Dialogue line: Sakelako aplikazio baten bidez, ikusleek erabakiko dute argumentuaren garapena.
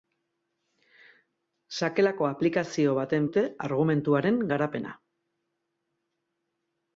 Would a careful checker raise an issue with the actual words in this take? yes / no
yes